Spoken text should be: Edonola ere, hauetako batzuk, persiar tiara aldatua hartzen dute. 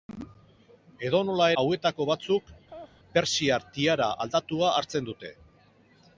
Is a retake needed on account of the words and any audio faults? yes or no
yes